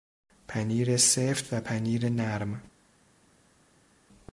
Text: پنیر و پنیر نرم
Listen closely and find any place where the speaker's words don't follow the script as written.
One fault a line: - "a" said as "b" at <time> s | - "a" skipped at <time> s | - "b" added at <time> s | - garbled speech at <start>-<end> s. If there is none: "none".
- "سفت" added at 1.0 s